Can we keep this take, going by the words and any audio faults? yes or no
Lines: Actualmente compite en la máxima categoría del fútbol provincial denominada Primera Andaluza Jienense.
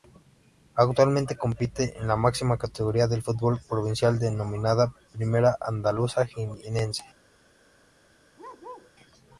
no